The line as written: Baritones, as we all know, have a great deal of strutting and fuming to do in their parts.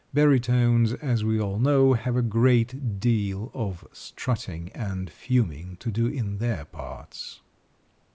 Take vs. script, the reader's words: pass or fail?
pass